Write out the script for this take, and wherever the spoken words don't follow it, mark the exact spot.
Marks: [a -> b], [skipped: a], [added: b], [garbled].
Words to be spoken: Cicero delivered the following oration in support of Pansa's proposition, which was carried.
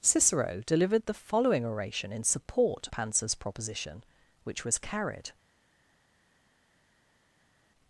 Cicero delivered the following oration in support [skipped: of] Pansa's proposition, which was carried.